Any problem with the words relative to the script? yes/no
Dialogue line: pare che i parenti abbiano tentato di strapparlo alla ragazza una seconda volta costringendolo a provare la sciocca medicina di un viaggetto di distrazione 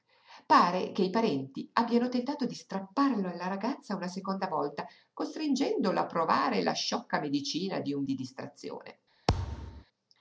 yes